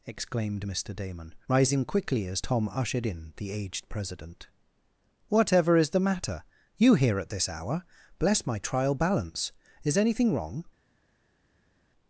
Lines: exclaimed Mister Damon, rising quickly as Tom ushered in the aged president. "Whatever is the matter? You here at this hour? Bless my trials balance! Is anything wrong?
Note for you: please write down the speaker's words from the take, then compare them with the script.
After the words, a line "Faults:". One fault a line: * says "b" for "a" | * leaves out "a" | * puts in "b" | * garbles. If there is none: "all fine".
exclaimed Mister Damon, rising quickly as Tom ushered in the aged president. "Whatever is the matter? You here at this hour? Bless my trial balance! Is anything wrong?
Faults:
* says "trial" for "trials"